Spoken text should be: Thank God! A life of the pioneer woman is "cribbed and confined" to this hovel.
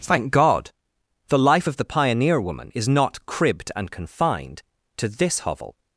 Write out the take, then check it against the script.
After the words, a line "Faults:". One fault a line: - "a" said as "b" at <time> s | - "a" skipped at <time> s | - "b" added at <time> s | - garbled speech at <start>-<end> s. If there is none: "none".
Thank God! The life of the pioneer woman is not "cribbed and confined" to this hovel.
Faults:
- "A" said as "The" at 1.3 s
- "not" added at 2.9 s